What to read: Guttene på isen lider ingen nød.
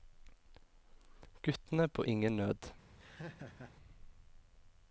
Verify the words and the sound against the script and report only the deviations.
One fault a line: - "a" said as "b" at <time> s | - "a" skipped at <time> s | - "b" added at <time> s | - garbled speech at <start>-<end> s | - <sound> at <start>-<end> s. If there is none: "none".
- "isen lider" skipped at 2.0 s
- laugh at 3.0-3.8 s